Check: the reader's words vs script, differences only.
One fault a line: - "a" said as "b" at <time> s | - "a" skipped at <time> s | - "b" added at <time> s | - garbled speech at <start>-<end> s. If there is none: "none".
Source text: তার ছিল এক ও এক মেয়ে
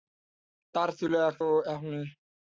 none